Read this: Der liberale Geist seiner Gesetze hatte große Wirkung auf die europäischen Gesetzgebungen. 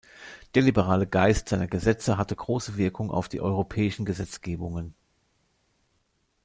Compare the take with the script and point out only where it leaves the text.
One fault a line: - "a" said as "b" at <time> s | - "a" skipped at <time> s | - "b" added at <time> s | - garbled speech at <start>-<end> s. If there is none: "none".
none